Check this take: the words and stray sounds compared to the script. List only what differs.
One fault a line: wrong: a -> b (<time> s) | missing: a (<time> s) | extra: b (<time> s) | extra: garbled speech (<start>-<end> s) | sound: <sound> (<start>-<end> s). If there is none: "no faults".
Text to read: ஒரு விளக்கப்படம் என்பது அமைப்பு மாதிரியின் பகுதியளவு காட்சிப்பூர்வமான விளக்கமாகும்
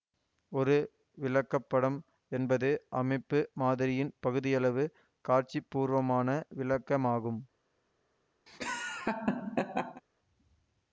sound: laugh (8.5-10.0 s)